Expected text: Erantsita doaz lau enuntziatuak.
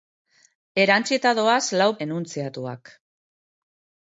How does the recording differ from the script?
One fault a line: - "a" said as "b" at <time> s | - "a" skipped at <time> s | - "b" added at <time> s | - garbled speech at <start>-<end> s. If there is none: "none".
none